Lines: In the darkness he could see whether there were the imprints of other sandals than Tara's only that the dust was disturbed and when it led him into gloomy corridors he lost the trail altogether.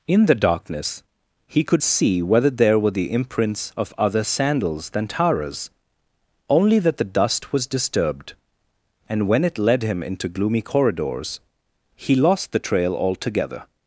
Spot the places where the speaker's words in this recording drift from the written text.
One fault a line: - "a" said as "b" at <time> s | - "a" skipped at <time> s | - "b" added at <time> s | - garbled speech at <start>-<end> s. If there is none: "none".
none